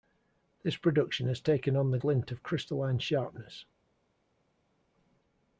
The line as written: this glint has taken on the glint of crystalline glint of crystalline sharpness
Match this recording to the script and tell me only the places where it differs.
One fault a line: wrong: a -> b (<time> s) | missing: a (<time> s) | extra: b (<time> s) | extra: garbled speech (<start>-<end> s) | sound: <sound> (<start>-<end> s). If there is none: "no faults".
wrong: glint -> production (0.8 s)
missing: glint of crystalline (3.0 s)